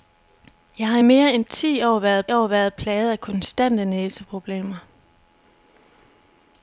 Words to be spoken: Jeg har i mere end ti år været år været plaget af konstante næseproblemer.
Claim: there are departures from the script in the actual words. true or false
false